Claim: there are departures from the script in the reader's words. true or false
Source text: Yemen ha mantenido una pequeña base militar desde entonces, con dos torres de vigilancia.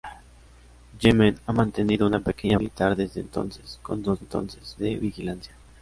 true